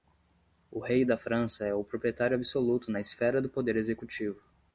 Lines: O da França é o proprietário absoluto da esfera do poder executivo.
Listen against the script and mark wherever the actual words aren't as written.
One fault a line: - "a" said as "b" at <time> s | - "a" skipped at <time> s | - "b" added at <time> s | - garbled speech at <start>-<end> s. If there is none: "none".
- "rei" added at 0.8 s
- "da" said as "na" at 2.9 s